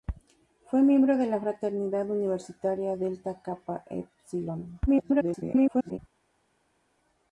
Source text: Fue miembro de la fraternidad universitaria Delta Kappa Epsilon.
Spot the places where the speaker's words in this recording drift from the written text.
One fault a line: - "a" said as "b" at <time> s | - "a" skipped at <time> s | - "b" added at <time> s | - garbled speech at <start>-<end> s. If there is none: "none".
- garbled speech at 4.9-6.0 s